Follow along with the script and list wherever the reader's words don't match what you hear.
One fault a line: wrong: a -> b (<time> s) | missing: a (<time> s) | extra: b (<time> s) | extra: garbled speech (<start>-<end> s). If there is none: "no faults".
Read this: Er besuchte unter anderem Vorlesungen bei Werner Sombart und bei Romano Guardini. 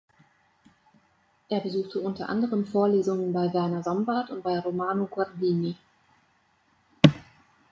no faults